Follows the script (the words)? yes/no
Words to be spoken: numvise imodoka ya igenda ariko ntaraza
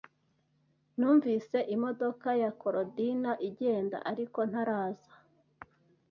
no